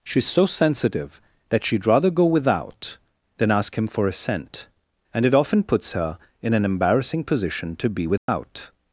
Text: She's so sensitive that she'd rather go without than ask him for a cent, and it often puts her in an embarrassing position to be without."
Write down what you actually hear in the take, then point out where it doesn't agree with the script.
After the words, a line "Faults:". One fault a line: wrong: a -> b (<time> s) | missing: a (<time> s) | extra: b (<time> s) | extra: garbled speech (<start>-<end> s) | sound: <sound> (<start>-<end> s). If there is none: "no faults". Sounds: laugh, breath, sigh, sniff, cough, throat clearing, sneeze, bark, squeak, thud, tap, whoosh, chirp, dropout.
She's so sensitive that she'd rather go without than ask him for a cent, and it often puts her in an embarrassing position to be without."
Faults:
sound: dropout (8.2-8.3 s)